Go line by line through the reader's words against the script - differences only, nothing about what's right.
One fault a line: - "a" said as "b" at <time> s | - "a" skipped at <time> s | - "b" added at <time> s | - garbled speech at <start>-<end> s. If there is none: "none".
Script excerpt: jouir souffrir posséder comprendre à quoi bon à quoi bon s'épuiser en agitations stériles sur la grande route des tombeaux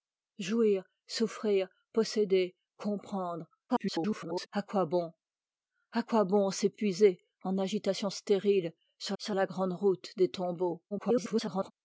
- garbled speech at 3.7-4.5 s
- "sur" added at 9.2 s
- garbled speech at 10.9-11.7 s